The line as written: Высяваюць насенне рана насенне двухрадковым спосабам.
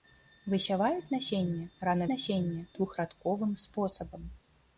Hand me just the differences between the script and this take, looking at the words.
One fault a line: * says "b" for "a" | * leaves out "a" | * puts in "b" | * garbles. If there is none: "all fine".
all fine